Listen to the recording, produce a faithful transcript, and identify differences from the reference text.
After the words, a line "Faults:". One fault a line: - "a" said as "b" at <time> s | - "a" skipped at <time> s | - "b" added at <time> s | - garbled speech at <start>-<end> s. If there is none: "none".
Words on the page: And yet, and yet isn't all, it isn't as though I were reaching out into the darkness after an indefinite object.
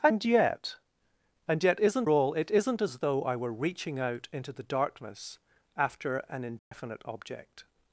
And yet, and yet isn't all, it isn't as though I were reaching out into the darkness after an indefinite object.
Faults:
none